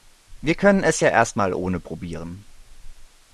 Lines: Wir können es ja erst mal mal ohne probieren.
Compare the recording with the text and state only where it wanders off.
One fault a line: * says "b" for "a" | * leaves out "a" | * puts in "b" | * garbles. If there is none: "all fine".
* leaves out "mal"